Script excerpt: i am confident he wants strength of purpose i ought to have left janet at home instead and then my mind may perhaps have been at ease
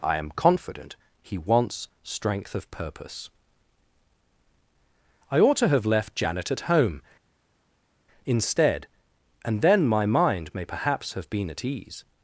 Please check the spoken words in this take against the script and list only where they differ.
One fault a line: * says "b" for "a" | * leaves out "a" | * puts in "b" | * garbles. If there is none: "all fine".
all fine